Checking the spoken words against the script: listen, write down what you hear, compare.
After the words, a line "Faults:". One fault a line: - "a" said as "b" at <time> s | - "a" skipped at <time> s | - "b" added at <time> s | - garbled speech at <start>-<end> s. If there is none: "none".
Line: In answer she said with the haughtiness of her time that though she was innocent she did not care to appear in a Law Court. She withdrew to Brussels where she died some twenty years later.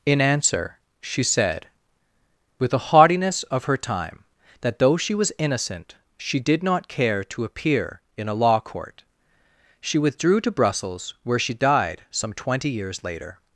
In answer she said with the haughtiness of her time that though she was innocent she did not care to appear in a Law Court. She withdrew to Brussels where she died some twenty years later.
Faults:
none